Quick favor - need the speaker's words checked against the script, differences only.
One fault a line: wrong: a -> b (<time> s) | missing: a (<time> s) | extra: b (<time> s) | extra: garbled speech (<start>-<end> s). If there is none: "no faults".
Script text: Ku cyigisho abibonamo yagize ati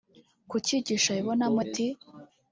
missing: yagize (1.6 s)